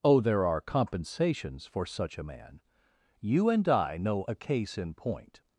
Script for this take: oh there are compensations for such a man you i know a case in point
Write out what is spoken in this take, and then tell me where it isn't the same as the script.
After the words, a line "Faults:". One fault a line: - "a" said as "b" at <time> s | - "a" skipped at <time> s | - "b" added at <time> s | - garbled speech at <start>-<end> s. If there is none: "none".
oh there are compensations for such a man you and i know a case in point
Faults:
- "and" added at 3.5 s